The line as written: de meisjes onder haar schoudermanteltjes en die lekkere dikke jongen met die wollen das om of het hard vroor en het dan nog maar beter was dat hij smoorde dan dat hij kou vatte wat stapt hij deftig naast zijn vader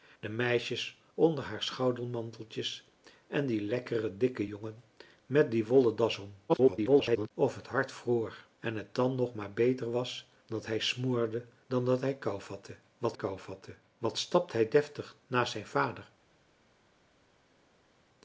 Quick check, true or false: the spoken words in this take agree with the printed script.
false